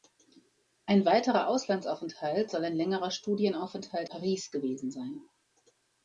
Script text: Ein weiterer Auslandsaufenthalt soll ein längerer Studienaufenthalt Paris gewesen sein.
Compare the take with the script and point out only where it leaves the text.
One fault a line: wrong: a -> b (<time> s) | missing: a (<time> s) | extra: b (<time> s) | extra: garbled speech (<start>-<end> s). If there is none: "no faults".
no faults